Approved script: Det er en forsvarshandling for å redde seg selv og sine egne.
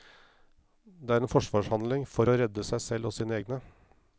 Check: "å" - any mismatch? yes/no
no